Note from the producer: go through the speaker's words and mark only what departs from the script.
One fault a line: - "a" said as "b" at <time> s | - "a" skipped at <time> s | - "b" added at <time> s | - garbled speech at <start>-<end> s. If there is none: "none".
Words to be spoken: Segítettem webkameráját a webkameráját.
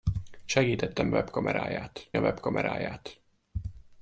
none